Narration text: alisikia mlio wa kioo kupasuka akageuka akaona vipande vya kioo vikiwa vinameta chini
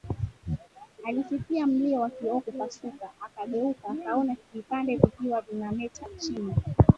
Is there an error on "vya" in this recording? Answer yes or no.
yes